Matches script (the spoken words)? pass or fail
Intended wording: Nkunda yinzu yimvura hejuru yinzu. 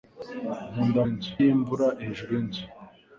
pass